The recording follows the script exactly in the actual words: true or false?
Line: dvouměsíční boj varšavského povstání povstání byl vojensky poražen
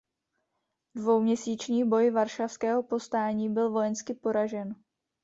false